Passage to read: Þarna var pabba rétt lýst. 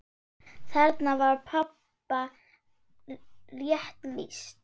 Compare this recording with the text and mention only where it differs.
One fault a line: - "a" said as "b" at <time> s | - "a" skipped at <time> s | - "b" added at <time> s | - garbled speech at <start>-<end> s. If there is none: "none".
none